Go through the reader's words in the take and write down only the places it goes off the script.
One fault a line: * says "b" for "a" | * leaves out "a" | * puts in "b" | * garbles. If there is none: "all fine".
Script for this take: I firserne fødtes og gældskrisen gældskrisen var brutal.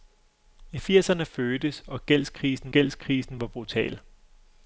all fine